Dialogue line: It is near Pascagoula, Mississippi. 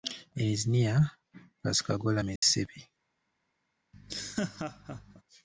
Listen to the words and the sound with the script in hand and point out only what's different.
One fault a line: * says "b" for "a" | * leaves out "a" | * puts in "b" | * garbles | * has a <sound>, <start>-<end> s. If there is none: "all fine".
* has a dropout, 2.4-2.4 s
* has a laugh, 3.9-5.2 s